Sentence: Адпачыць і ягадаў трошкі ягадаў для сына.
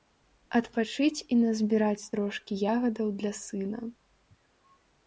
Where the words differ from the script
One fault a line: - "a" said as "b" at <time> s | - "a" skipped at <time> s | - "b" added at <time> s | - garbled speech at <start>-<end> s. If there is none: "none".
- "ягадаў" said as "назбіраць" at 1.4 s